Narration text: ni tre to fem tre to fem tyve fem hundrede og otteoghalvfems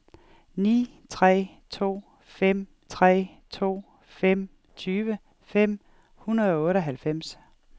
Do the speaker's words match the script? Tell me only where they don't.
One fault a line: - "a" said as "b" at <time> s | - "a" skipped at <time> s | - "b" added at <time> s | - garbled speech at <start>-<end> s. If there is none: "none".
none